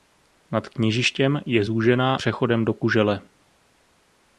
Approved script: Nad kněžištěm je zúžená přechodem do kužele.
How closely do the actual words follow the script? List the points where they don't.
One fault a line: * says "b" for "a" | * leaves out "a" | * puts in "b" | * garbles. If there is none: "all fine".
all fine